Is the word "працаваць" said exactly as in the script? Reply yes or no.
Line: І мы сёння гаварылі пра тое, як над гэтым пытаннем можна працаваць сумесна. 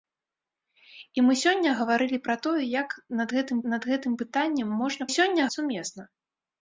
no